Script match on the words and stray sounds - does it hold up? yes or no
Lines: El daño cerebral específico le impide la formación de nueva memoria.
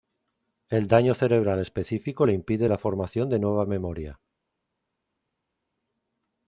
yes